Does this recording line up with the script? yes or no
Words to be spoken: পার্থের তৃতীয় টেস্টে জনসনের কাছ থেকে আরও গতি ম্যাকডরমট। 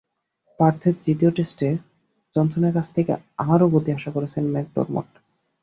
no